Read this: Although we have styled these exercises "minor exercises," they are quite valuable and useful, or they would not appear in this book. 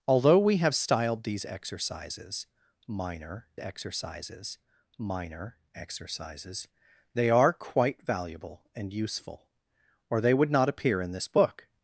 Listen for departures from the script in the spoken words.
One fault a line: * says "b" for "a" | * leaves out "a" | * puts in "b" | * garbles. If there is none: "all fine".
* puts in "minor exercises"